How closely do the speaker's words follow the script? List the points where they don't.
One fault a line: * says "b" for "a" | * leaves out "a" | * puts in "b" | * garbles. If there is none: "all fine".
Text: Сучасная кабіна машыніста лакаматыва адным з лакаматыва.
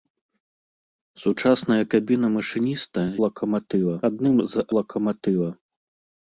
all fine